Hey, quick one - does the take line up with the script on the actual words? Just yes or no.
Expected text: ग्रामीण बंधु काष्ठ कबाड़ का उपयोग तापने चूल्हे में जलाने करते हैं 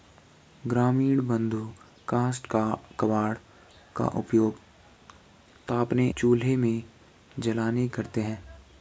yes